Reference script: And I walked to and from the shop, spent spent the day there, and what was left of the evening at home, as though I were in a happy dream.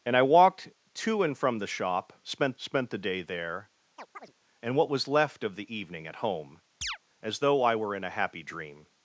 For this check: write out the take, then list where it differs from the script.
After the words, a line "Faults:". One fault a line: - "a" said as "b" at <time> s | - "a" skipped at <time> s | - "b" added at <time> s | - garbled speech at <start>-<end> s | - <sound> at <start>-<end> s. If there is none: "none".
And I walked to and from the shop, spent spent the day there, and what was left of the evening at home, as though I were in a happy dream.
Faults:
- chirp at 4.0-4.3 s
- chirp at 6.8-7.0 s